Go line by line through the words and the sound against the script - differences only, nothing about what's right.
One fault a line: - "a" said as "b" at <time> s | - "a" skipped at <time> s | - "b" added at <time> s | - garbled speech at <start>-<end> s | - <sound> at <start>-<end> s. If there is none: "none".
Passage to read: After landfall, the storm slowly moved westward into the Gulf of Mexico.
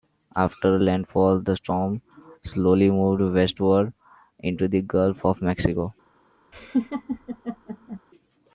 - laugh at 6.5-8.0 s